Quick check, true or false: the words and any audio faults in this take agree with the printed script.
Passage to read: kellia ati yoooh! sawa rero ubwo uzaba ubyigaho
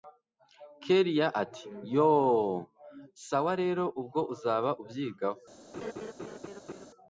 false